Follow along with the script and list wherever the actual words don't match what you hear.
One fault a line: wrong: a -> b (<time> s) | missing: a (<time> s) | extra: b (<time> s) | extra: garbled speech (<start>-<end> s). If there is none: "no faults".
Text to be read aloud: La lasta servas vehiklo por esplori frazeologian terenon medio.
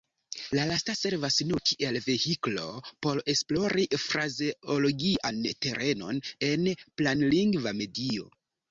extra: nur kiel (1.5 s)
extra: en planlingva (6.5 s)